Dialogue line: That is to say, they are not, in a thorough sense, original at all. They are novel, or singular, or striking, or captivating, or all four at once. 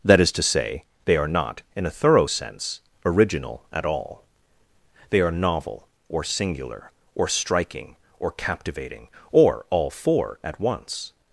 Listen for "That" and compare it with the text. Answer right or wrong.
right